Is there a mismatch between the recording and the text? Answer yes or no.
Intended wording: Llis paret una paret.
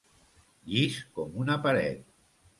yes